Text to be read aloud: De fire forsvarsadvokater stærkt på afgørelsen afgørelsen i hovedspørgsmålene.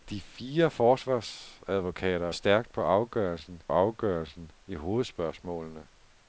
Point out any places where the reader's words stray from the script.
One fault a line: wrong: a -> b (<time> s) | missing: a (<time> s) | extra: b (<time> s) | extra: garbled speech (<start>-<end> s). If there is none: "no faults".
no faults